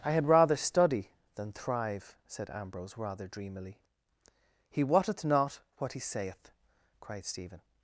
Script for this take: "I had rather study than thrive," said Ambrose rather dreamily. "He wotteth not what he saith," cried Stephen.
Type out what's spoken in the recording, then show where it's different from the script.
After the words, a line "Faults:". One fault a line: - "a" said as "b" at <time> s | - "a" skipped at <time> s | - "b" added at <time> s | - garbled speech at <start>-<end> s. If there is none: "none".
"I had rather study than thrive," said Ambrose rather dreamily. "He wotteth not what he saith," cried Stephen.
Faults:
none